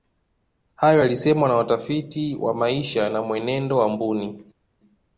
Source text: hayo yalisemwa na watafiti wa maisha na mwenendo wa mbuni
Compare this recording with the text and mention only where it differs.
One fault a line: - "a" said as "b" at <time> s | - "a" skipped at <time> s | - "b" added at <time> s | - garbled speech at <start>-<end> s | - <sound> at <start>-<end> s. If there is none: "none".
none